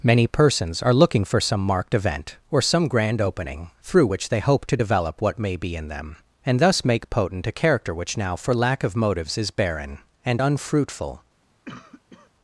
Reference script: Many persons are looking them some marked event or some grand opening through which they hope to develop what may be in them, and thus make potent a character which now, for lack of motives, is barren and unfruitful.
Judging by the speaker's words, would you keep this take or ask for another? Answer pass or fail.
fail